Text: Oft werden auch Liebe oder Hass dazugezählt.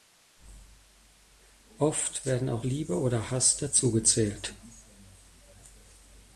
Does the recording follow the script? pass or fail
pass